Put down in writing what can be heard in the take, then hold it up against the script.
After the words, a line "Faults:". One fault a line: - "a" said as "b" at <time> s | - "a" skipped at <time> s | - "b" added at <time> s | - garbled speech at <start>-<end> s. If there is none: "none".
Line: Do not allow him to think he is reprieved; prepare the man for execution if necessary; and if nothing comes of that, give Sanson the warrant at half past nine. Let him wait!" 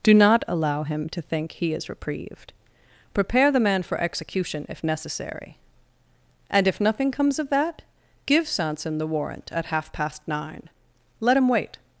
Do not allow him to think he is reprieved; prepare the man for execution if necessary; and if nothing comes of that, give Sanson the warrant at half past nine. Let him wait!"
Faults:
none